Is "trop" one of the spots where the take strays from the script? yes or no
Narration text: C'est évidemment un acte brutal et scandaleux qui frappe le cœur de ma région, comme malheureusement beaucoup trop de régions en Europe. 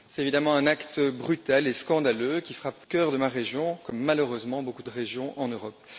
yes